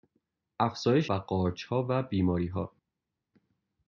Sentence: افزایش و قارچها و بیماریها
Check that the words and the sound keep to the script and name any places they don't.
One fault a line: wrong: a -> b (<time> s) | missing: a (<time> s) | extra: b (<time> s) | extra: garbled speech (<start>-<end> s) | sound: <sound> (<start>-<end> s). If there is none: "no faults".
no faults